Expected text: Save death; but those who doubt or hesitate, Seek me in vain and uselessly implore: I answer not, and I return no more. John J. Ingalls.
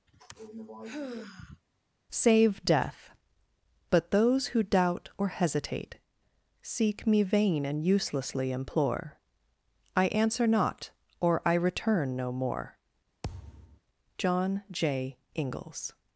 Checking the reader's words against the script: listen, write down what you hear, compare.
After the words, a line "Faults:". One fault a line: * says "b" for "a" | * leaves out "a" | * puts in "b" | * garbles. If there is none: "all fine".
Save death; but those who doubt or hesitate, Seek me vain and uselessly implore: I answer not, or I return no more. John J. Ingalls.
Faults:
* leaves out "in"
* says "or" for "and"